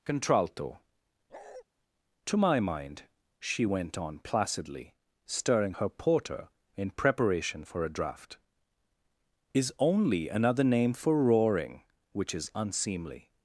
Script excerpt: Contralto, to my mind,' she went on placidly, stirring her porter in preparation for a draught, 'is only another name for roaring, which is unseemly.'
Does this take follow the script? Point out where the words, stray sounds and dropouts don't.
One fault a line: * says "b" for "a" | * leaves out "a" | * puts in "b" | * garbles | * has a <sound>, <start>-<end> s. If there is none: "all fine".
* has a bark, 1.3-1.6 s